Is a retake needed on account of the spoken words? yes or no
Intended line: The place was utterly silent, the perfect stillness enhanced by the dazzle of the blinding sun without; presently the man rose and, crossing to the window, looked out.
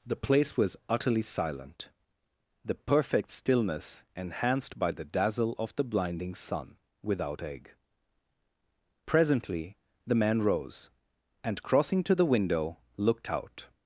yes